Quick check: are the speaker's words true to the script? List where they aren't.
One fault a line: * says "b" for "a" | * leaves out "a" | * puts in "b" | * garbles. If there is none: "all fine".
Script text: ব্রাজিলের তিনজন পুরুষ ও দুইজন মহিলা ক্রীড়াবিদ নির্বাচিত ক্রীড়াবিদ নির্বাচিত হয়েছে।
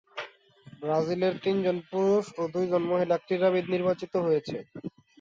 * leaves out "ক্রীড়াবিদ নির্বাচিত"